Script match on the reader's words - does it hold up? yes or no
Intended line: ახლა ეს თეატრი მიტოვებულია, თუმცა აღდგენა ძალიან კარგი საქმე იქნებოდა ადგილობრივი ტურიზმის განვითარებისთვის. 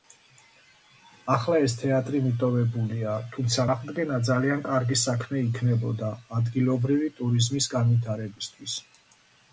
yes